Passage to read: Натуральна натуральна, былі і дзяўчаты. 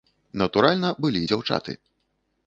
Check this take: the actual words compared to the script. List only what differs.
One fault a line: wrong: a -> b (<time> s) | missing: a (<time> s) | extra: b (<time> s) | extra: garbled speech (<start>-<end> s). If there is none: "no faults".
missing: натуральна (0.9 s)